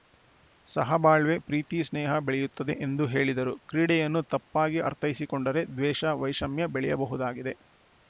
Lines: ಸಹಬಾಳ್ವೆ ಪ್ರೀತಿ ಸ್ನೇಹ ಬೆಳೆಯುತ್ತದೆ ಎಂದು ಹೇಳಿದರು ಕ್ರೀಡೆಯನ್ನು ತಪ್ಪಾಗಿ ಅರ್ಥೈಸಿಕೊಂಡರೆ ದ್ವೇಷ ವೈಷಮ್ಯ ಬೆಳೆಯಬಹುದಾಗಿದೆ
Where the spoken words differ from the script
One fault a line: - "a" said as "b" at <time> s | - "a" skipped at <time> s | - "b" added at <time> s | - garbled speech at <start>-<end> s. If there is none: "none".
none